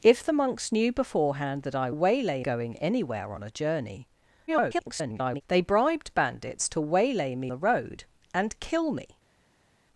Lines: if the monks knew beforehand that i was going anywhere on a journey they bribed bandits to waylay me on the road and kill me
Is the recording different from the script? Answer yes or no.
yes